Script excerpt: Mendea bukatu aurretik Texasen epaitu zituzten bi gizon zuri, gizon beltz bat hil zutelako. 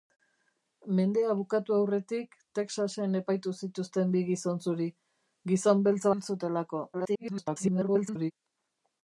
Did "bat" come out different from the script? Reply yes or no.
yes